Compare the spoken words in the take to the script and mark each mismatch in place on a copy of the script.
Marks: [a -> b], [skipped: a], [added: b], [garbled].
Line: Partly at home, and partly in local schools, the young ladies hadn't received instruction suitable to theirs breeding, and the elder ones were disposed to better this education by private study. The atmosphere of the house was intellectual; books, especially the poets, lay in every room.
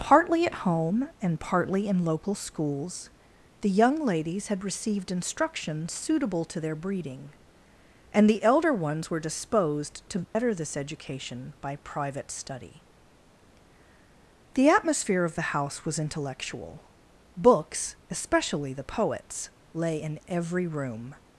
Partly at home, and partly in local schools, the young ladies [hadn't -> had] received instruction suitable to [theirs -> their] breeding, and the elder ones were disposed to better this education by private study. The atmosphere of the house was intellectual; books, especially the poets, lay in every room.